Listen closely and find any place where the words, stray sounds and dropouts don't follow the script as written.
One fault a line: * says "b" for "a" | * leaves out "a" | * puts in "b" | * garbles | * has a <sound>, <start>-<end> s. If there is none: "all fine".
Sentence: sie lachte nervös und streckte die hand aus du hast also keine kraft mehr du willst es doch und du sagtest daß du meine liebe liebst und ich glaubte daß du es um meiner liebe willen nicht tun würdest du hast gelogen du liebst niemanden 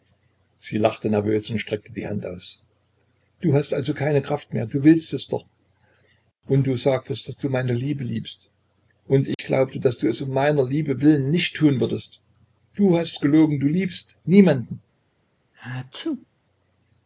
* has a dropout, 9.3-9.4 s
* has a sneeze, 15.5-16.3 s